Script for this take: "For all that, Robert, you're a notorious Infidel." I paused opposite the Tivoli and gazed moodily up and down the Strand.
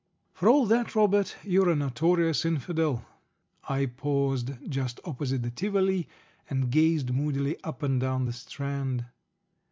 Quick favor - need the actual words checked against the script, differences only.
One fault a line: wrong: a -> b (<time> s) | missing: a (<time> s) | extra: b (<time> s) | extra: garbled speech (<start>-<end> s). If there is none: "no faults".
extra: just (4.7 s)